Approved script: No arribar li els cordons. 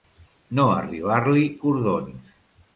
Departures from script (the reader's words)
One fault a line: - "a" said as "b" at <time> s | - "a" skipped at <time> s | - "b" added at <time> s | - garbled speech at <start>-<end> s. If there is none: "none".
- "els" skipped at 1.4 s